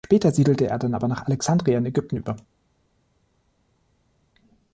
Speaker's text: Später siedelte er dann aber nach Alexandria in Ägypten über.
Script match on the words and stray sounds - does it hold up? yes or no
yes